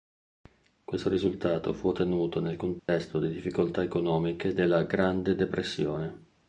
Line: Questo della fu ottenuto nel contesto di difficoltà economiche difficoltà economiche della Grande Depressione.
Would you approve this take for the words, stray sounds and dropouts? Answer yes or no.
no